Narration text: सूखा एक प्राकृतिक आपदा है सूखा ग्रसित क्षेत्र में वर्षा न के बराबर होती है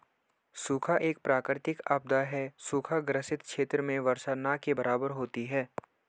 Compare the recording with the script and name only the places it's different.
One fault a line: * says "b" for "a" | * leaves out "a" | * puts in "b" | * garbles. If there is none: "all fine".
all fine